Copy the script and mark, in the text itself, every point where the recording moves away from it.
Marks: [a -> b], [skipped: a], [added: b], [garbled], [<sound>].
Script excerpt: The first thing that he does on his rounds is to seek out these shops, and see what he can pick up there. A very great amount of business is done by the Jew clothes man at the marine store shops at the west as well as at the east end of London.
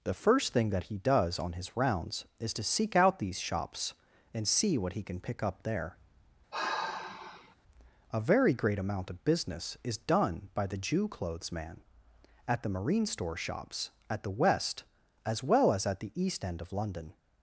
The first thing that he does on his rounds is to seek out these shops, and see what he can pick up there. [sigh] A very great amount of business is done by the Jew clothes man at the marine store shops at the west as well as at the east end of London.